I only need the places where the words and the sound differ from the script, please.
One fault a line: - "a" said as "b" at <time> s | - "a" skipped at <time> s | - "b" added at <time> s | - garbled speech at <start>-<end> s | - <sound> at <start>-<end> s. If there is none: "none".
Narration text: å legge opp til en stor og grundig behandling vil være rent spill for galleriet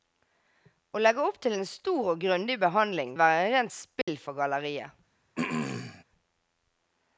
- "vil" skipped at 3.1 s
- dropout at 4.0-4.1 s
- throat clearing at 5.4-6.0 s